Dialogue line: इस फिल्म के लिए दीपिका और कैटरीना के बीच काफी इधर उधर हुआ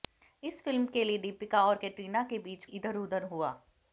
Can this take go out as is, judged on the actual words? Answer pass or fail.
fail